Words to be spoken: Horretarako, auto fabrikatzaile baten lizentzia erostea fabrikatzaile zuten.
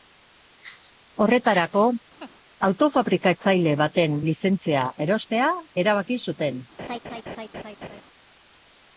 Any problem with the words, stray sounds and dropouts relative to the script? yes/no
yes